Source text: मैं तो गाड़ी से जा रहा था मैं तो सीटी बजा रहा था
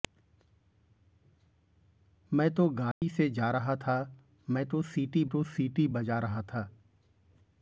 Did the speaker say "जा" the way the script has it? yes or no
yes